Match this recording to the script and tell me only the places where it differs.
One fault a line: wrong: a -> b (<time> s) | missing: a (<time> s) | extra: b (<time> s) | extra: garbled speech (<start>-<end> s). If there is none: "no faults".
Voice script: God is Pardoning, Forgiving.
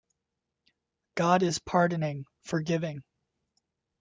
no faults